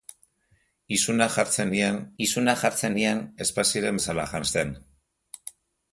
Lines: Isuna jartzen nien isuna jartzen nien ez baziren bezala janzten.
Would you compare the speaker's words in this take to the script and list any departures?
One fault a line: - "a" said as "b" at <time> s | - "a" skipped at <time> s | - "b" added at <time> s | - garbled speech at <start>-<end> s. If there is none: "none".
none